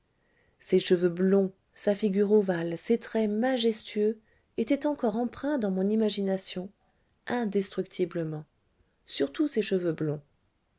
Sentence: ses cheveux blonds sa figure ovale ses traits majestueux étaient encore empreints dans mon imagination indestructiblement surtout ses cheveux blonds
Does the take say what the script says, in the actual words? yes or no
yes